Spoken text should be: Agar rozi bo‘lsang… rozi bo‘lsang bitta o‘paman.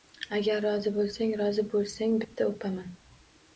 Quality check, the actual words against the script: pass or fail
pass